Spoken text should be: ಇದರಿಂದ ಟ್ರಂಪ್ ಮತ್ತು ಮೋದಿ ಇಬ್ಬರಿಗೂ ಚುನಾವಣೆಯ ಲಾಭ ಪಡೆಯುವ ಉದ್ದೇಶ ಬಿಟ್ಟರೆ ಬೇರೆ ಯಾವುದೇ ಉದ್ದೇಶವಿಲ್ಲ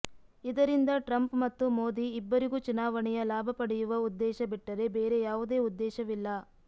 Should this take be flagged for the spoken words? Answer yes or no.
no